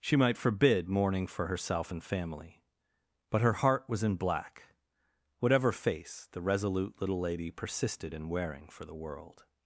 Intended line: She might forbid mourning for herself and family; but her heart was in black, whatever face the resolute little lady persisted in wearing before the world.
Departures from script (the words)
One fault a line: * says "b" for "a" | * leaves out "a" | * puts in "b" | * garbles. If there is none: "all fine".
* says "for" for "before"